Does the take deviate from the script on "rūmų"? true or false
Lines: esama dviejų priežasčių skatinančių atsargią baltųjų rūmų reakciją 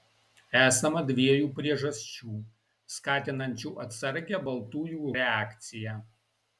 true